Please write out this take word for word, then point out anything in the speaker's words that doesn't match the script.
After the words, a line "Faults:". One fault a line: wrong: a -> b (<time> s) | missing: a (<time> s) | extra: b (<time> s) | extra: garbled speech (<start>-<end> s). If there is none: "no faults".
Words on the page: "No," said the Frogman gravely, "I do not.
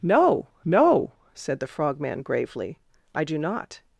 "No no," said the Frogman gravely, "I do not.
Faults:
extra: no (0.7 s)